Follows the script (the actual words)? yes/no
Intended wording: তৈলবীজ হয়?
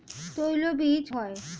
yes